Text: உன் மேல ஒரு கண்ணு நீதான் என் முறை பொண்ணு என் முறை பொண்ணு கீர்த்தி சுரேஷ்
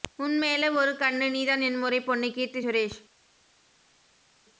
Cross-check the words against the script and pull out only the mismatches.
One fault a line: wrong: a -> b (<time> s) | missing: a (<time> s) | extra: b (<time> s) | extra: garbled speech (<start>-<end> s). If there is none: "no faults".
missing: என் முறை பொண்ணு (2.3 s)